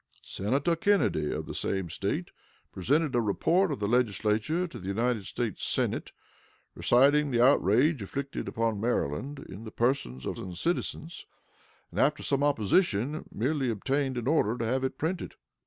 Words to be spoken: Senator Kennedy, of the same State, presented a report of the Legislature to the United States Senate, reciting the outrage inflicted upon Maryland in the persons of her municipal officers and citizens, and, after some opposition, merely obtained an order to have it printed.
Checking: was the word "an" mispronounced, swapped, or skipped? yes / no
no